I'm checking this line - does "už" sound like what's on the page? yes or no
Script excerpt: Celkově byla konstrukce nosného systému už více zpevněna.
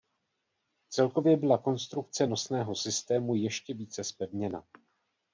no